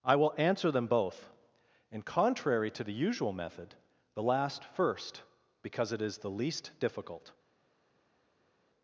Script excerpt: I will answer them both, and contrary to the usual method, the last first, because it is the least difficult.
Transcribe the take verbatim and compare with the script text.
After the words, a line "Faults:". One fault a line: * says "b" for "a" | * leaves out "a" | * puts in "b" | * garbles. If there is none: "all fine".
I will answer them both, and contrary to the usual method, the last first, because it is the least difficult.
Faults:
all fine